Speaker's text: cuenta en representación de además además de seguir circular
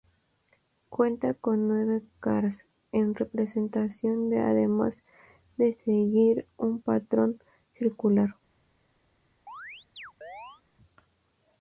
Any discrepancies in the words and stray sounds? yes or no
yes